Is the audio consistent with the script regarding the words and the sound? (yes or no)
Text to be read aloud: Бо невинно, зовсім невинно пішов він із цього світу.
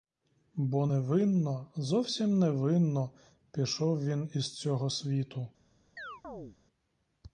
no